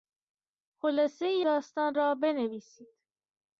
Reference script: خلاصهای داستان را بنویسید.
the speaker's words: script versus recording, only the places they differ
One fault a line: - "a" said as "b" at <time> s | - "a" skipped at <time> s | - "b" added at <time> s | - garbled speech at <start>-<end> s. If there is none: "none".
none